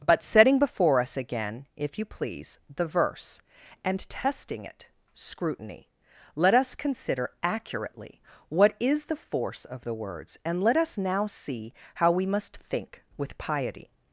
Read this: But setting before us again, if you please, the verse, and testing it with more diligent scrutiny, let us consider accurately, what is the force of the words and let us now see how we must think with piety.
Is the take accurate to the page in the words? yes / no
no